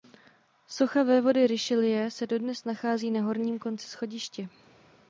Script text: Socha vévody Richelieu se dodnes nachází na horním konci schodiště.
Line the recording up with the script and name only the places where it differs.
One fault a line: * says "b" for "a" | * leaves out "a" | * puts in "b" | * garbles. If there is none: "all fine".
all fine